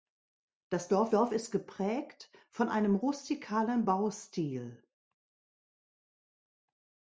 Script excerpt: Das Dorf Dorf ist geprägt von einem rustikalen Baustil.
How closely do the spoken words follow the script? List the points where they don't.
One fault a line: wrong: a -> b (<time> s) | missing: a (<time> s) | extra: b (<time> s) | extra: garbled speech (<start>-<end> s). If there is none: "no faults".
no faults